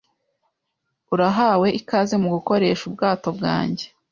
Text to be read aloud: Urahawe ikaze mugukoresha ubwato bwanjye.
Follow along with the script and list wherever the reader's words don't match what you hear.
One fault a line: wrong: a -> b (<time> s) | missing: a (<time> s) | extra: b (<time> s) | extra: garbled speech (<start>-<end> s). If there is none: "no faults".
no faults